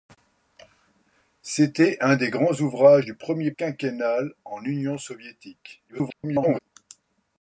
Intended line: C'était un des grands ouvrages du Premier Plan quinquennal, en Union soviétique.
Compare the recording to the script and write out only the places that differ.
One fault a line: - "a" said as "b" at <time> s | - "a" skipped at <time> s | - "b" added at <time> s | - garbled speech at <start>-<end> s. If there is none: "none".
- "Plan" skipped at 3.5 s
- garbled speech at 5.9-6.6 s